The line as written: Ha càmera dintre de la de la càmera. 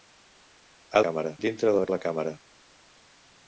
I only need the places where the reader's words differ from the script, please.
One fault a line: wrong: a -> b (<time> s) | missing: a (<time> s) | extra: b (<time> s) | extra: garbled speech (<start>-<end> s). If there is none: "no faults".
no faults